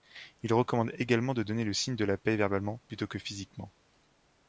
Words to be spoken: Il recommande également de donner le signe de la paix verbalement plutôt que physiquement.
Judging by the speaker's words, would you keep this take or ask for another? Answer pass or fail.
pass